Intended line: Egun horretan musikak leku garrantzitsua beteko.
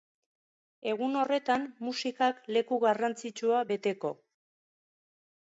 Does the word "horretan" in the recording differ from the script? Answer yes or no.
no